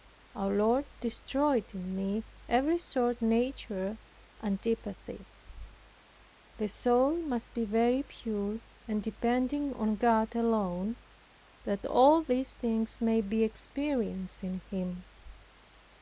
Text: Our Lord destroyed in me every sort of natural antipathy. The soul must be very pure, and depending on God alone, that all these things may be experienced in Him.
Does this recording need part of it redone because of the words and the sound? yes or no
yes